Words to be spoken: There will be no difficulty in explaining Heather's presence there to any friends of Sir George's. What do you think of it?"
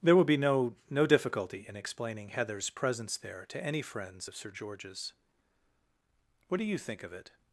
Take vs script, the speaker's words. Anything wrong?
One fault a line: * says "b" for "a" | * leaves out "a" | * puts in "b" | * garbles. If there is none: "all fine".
* puts in "no"